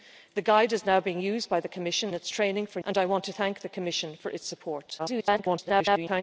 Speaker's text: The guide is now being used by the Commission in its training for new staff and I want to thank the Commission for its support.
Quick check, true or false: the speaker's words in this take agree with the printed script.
false